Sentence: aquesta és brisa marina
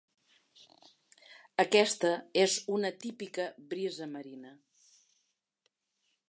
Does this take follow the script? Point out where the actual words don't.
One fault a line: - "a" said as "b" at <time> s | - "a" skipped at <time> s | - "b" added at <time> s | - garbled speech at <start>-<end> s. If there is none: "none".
- "una típica" added at 2.8 s